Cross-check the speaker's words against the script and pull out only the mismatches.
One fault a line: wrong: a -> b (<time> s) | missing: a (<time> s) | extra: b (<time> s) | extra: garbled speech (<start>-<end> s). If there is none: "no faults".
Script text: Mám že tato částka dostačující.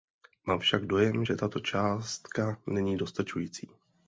extra: však dojem (0.6 s)
extra: není (2.7 s)